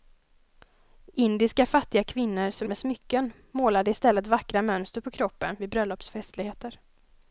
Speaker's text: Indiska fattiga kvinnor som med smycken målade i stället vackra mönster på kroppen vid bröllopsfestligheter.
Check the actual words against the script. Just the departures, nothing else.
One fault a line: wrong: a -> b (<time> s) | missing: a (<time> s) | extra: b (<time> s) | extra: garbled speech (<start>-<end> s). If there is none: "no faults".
no faults